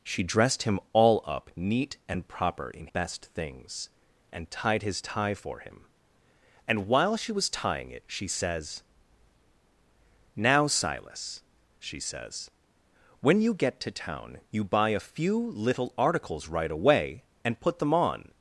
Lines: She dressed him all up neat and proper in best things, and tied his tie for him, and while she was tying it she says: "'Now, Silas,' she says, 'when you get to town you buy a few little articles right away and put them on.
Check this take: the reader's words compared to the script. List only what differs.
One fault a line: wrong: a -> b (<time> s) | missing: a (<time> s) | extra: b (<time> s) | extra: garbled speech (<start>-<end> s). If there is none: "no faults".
no faults